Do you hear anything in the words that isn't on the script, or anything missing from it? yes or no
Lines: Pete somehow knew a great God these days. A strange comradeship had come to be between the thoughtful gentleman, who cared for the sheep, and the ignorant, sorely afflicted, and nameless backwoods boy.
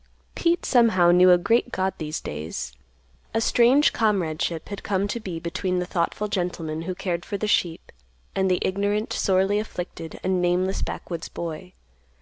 no